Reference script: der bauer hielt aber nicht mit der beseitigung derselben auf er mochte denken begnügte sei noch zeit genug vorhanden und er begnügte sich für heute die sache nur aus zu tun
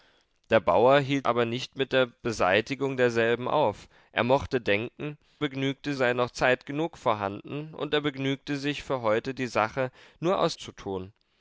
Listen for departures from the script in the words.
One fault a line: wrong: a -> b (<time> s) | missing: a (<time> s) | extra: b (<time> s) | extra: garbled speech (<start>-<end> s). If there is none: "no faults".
no faults